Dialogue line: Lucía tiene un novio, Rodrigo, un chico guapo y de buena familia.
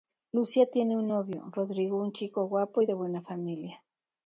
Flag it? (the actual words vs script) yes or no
no